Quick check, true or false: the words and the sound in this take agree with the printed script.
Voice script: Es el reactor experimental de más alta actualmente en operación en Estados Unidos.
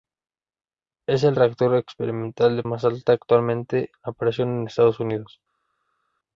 true